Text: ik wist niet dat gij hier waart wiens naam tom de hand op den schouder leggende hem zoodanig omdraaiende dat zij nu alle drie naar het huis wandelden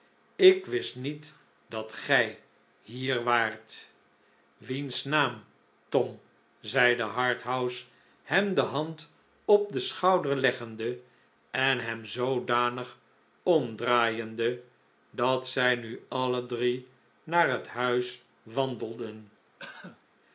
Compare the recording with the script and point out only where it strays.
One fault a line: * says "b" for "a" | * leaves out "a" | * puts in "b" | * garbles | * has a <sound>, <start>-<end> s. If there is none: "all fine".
* puts in "zeide harthouse hem"
* puts in "en"
* has a cough, 19.6-20.0 s